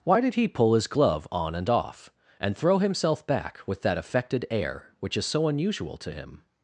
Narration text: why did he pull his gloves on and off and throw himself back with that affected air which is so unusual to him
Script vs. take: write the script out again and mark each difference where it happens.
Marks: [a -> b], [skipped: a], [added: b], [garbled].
why did he pull his [gloves -> glove] on and off and throw himself back with that affected air which is so unusual to him